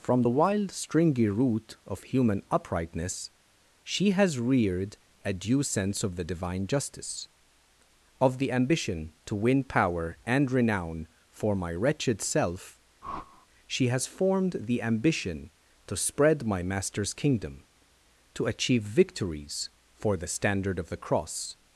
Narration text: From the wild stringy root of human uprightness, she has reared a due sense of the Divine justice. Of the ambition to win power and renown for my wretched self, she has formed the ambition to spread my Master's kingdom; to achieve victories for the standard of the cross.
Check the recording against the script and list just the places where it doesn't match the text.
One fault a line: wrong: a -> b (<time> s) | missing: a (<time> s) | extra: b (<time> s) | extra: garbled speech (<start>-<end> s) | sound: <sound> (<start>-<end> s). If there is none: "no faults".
sound: whoosh (13.0-13.5 s)